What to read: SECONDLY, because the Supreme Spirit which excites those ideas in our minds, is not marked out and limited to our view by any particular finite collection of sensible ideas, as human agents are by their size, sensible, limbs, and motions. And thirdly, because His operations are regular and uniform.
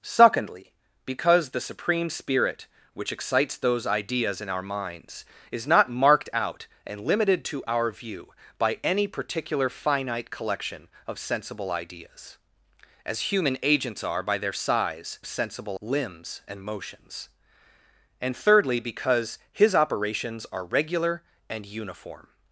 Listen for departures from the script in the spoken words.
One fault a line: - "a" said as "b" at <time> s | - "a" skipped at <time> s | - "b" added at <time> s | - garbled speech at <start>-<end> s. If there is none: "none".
none